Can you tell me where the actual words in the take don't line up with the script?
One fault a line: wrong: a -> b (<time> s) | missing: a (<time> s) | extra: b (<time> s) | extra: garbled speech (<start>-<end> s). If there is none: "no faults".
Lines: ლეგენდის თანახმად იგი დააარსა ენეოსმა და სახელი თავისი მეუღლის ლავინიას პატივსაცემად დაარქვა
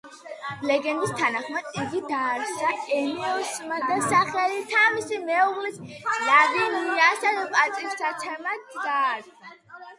no faults